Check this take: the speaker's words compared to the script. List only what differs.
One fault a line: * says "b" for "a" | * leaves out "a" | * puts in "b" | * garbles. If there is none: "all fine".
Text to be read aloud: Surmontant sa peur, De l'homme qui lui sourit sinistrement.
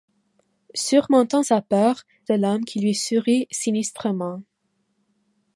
all fine